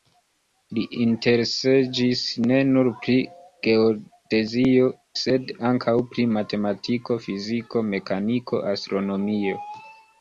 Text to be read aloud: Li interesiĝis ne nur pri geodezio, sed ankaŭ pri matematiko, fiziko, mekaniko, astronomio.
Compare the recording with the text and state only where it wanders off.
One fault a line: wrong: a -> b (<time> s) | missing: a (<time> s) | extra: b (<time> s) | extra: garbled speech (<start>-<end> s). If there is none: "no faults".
no faults